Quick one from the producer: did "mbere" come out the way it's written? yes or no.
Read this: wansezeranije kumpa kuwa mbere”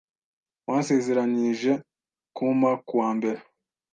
yes